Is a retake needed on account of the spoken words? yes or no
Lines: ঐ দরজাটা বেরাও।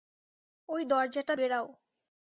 no